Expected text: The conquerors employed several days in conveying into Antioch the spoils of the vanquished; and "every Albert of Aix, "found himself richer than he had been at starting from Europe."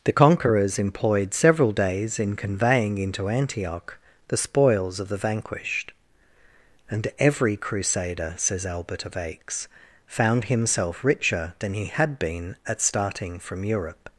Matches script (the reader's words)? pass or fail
fail